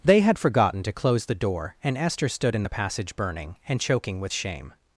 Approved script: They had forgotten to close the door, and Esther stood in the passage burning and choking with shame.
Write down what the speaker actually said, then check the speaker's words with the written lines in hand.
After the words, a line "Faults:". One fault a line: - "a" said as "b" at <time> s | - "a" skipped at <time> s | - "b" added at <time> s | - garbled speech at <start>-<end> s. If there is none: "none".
They had forgotten to close the door, and Esther stood in the passage burning and choking with shame.
Faults:
none